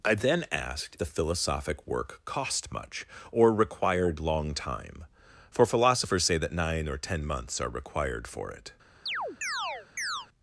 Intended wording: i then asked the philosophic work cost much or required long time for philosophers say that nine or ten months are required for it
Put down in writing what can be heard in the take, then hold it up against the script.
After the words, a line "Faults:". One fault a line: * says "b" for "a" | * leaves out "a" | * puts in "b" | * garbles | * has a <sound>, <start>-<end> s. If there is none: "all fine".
i then asked the philosophic work cost much or required long time for philosophers say that nine or ten months are required for it
Faults:
* has a chirp, 9.1-10.3 s